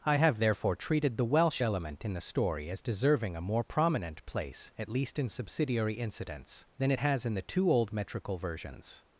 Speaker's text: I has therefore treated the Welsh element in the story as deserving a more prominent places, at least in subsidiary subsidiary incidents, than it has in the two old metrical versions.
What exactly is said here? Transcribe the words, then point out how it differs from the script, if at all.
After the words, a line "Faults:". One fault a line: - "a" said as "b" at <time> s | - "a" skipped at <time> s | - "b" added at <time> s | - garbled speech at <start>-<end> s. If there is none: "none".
I have therefore treated the Welsh element in the story as deserving a more prominent place, at least in subsidiary incidents, than it has in the two old metrical versions.
Faults:
- "has" said as "have" at 0.1 s
- "places" said as "place" at 4.3 s
- "subsidiary" skipped at 5.9 s